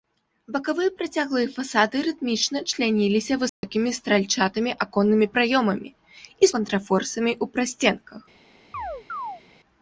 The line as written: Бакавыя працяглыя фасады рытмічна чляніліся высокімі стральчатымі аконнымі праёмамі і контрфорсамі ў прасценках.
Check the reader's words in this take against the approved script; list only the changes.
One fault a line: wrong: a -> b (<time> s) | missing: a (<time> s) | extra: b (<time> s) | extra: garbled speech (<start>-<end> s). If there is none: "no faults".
no faults